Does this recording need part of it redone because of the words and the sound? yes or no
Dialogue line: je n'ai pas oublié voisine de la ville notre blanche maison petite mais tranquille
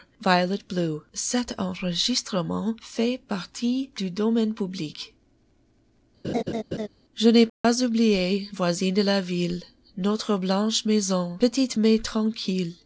yes